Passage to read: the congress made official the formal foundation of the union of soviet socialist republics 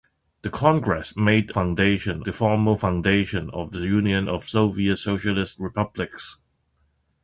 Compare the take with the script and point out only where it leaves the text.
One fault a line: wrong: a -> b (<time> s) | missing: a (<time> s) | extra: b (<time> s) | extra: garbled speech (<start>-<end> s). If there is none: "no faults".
wrong: official -> foundation (1.5 s)